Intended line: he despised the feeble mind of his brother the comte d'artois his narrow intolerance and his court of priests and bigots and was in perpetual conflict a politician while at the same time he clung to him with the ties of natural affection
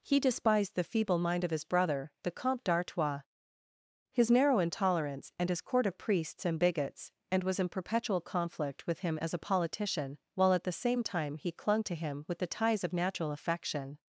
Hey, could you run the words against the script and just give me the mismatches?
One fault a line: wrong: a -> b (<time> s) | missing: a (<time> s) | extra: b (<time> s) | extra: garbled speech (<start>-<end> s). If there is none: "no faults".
extra: with him as (8.8 s)